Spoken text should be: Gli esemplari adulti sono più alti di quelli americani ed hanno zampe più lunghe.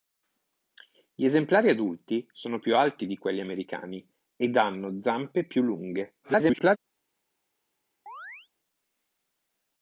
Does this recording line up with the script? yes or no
no